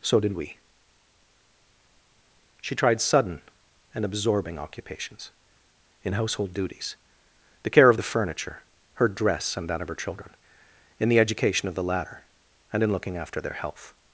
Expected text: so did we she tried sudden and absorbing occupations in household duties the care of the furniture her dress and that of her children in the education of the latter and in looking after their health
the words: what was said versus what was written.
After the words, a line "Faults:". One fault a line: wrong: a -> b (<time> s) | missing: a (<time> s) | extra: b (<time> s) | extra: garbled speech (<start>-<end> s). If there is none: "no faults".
so did we she tried sudden and absorbing occupations in household duties the care of the furniture her dress and that of her children in the education of the latter and in looking after their health
Faults:
no faults